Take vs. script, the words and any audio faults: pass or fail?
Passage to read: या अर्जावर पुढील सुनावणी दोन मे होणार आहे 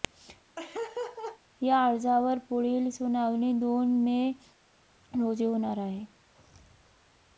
fail